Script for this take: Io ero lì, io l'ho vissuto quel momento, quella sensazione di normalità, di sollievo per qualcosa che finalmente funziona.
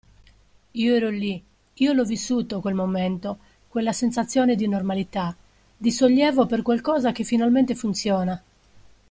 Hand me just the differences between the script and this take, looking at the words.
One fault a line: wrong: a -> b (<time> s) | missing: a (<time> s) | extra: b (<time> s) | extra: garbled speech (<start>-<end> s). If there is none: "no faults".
no faults